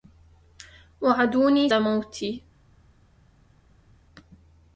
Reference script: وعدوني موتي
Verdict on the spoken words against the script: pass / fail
pass